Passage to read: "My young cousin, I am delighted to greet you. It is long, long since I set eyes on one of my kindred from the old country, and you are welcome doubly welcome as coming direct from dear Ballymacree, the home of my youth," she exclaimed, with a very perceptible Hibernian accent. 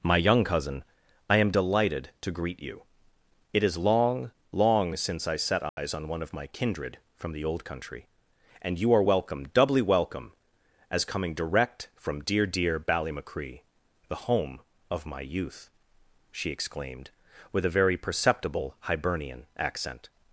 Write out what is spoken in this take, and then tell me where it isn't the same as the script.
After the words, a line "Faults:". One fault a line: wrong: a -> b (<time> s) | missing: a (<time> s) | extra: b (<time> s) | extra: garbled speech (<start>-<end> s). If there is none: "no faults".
"My young cousin, I am delighted to greet you. It is long, long since I set eyes on one of my kindred from the old country, and you are welcome doubly welcome as coming direct from dear dear Ballymacree, the home of my youth," she exclaimed, with a very perceptible Hibernian accent.
Faults:
extra: dear (12.5 s)